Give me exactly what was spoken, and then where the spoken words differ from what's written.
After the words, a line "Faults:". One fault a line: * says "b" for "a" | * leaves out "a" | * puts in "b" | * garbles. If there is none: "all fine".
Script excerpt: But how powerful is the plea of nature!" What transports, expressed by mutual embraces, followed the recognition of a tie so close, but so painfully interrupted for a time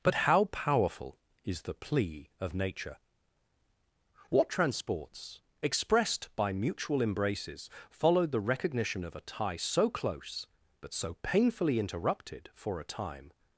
But how powerful is the plea of nature!" What transports, expressed by mutual embraces, followed the recognition of a tie so close, but so painfully interrupted for a time
Faults:
all fine